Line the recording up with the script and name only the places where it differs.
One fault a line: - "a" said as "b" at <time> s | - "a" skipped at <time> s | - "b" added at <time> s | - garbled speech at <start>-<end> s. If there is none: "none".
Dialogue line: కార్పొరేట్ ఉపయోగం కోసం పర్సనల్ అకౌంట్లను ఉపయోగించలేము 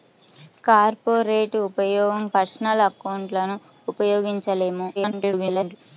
- "కోసం" skipped at 2.2 s
- garbled speech at 5.0-5.8 s